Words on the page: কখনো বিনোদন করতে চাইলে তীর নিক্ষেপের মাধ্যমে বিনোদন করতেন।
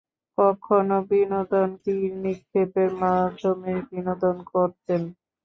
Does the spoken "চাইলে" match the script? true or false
false